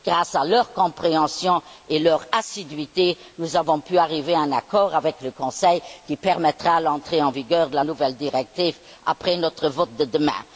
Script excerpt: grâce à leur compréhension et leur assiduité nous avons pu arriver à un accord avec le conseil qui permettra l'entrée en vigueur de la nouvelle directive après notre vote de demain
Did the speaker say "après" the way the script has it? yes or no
yes